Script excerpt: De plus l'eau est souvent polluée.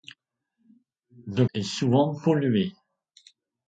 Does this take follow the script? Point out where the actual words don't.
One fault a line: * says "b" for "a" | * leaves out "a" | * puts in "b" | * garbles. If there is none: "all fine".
* leaves out "plus l'eau"